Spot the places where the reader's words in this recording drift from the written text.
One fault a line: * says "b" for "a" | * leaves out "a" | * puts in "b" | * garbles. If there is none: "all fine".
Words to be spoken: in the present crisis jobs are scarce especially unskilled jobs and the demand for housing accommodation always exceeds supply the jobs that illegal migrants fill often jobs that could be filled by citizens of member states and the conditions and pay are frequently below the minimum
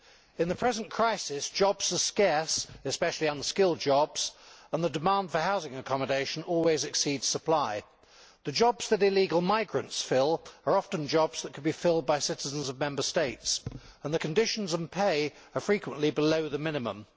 * puts in "are"